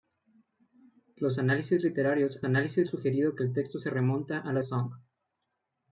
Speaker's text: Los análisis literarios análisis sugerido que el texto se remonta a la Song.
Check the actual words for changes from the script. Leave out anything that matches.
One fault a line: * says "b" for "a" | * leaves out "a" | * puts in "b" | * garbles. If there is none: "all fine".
all fine